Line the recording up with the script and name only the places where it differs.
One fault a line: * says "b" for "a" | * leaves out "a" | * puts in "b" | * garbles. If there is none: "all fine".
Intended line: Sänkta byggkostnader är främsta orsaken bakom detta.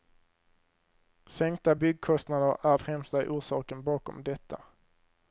all fine